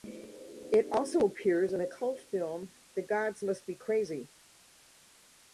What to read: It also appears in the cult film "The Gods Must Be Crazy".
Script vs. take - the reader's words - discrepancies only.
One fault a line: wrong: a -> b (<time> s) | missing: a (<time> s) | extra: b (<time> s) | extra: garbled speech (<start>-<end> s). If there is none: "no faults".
no faults